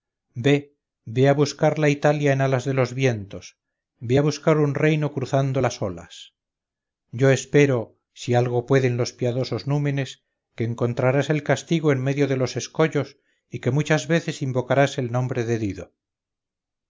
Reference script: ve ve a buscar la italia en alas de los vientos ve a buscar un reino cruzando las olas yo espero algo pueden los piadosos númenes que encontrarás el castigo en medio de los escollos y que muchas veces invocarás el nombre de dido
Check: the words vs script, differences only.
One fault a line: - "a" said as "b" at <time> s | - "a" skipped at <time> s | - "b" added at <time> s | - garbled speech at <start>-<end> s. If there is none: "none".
- "si" added at 8.1 s